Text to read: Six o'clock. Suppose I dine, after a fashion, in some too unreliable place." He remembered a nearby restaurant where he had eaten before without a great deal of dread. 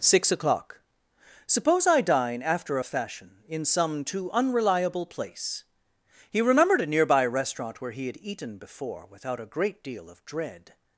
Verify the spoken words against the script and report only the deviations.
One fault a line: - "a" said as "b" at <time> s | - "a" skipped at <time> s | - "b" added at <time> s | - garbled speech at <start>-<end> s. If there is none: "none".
none